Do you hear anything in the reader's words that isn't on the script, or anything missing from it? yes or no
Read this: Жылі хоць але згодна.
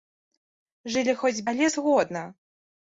no